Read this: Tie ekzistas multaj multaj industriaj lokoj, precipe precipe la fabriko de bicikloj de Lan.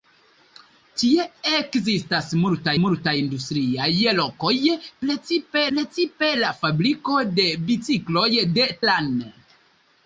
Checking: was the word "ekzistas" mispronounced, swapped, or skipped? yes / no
no